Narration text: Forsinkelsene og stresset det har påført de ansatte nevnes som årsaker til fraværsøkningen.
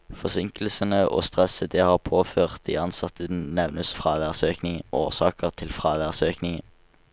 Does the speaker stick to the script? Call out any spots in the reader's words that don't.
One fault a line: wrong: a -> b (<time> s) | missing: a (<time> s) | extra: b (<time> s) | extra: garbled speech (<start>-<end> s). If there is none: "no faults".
wrong: som -> fraværsøkningen (3.9 s)